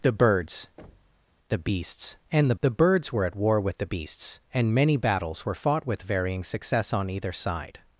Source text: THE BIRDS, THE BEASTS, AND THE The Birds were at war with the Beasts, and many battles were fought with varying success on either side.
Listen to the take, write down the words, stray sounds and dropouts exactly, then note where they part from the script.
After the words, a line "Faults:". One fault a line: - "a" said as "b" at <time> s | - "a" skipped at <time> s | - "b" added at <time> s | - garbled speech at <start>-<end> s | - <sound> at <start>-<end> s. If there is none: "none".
THE BIRDS, THE BEASTS, AND THE The Birds were at war with the Beasts, and many battles were fought with varying success on either side.
Faults:
- thud at 0.8-1.3 s